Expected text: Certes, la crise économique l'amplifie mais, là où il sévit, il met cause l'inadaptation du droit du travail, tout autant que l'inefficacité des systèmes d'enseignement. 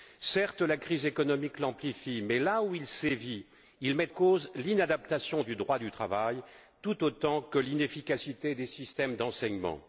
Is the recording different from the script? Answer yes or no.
no